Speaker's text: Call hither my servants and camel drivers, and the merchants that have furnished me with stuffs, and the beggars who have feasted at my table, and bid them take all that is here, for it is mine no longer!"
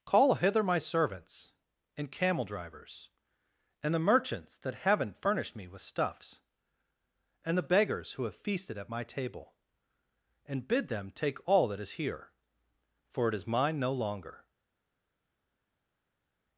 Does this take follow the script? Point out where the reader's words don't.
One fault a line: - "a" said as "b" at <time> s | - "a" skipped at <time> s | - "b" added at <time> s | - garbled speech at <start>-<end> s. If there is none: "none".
- "have" said as "haven't" at 4.8 s